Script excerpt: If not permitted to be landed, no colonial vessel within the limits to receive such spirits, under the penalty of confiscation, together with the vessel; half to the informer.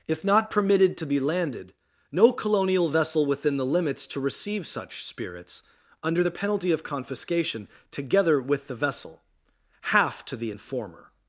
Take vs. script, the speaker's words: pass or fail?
pass